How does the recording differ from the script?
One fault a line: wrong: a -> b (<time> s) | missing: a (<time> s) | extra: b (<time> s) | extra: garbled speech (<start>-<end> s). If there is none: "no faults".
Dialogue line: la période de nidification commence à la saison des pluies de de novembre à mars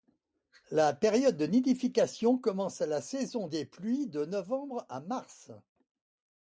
missing: de (4.3 s)